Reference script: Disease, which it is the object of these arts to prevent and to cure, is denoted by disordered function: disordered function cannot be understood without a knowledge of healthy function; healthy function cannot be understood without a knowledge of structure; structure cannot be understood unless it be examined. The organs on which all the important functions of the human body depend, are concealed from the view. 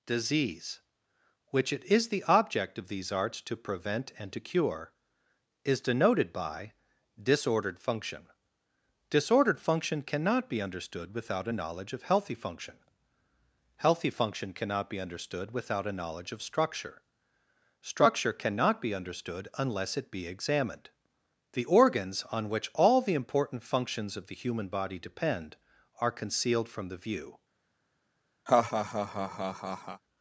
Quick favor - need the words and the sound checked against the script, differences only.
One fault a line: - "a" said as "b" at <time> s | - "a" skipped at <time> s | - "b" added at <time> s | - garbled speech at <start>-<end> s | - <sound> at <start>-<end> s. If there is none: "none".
- laugh at 28.5-30.0 s